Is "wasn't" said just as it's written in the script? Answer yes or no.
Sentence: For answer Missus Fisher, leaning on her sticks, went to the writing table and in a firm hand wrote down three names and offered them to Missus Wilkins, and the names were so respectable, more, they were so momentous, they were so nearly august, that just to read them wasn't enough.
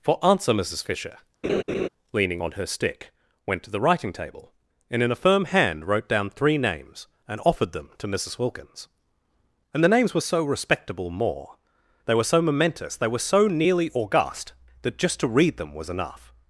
no